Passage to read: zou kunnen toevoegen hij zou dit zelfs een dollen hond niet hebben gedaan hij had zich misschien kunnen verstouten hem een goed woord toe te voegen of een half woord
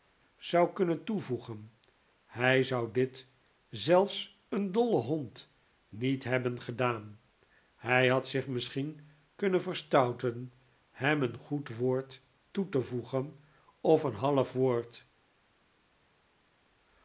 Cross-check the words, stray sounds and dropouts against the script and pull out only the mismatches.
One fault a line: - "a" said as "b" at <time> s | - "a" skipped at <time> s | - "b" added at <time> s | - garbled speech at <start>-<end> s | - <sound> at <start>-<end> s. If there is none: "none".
none